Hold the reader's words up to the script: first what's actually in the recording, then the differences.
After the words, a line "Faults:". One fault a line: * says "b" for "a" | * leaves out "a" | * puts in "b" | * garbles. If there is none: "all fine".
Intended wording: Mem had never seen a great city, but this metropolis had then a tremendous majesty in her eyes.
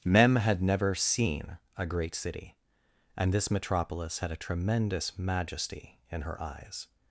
Mem had never seen a great city, and this metropolis had a tremendous majesty in her eyes.
Faults:
* says "and" for "but"
* leaves out "then"